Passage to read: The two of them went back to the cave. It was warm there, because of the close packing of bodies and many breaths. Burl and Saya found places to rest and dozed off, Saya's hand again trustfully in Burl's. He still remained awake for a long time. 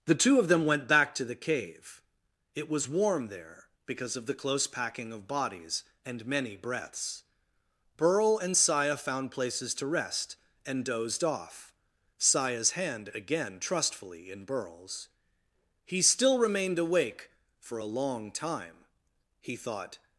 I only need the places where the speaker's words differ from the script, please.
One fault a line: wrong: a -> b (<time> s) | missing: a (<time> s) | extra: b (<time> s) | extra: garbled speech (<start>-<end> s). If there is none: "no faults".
extra: He thought (19.4 s)